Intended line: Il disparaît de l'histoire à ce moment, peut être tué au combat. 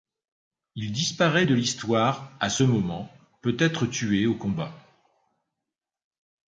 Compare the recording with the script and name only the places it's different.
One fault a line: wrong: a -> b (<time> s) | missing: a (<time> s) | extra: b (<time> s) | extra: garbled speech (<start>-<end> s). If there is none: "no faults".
no faults